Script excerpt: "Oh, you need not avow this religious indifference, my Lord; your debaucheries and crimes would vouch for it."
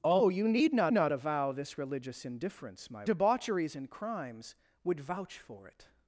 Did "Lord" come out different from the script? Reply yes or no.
yes